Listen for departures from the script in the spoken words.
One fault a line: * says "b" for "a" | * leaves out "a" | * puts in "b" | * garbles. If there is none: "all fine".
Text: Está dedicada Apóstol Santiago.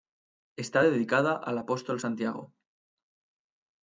* puts in "al"